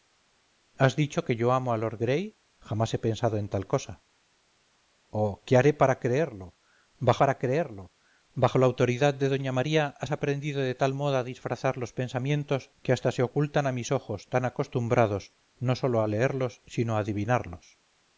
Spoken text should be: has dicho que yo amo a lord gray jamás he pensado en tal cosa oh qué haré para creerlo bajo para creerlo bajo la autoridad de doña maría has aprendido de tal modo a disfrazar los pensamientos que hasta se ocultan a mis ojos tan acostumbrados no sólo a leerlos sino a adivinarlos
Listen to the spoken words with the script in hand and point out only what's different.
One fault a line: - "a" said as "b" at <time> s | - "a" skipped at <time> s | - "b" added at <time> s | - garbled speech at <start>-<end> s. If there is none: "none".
none